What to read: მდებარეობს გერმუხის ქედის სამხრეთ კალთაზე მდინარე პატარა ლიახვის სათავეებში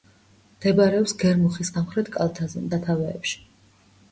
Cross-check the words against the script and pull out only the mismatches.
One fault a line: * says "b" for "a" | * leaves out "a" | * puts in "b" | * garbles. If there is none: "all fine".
* leaves out "ქედის"
* leaves out "მდინარე პატარა ლიახვის"